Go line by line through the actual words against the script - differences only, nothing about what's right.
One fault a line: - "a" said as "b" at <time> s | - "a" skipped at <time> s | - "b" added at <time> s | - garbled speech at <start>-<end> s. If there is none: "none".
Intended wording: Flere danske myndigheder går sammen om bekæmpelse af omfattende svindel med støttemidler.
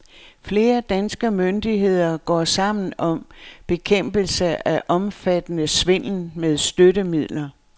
none